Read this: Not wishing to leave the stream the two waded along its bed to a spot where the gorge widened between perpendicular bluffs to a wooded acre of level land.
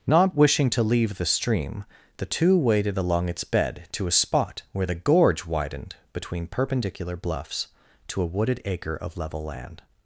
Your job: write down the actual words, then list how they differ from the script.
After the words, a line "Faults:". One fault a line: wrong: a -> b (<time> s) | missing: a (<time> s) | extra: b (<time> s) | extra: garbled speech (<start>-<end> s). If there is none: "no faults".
Not wishing to leave the stream the two waded along its bed to a spot where the gorge widened between perpendicular bluffs to a wooded acre of level land.
Faults:
no faults